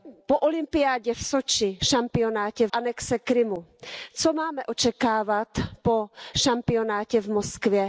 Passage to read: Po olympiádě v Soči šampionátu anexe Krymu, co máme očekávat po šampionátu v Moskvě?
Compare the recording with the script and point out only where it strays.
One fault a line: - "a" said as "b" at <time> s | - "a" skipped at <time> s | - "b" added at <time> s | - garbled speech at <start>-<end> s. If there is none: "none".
none